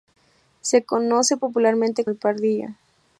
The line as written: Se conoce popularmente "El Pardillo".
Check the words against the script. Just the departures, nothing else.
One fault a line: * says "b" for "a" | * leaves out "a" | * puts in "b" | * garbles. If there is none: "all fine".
all fine